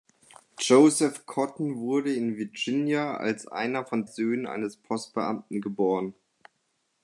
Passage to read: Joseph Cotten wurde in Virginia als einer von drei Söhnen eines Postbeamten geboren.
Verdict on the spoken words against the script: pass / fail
fail